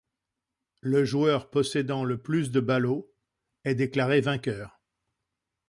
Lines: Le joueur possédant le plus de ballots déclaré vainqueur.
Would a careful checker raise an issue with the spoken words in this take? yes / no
yes